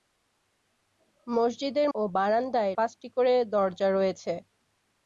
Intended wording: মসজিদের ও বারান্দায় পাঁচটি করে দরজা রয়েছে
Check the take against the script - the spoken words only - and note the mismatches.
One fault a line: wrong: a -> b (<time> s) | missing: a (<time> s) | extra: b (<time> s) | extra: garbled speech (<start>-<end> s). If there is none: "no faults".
no faults